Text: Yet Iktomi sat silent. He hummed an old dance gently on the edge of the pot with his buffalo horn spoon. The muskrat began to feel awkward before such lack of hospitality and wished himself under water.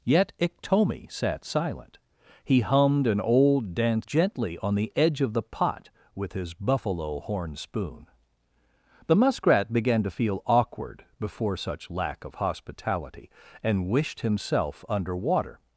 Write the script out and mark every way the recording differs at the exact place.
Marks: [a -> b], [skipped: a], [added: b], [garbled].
Yet Iktomi sat silent. He hummed an old dance gently on the edge of the pot with his buffalo horn spoon. The muskrat began to feel awkward before such lack of hospitality and wished himself under water.